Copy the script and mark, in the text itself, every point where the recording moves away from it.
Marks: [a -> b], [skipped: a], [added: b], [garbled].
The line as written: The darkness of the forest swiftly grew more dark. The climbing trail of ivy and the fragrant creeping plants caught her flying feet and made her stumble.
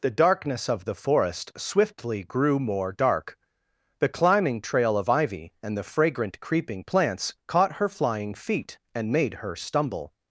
The darkness of the forest swiftly grew more dark. The climbing trail of ivy and the fragrant creeping plants caught her flying feet and made her stumble.